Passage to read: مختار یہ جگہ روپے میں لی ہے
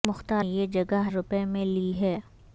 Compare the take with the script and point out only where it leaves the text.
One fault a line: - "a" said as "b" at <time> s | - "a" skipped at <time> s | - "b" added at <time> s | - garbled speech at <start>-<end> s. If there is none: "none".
none